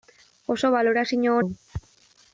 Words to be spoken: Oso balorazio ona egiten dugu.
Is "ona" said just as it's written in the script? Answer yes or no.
no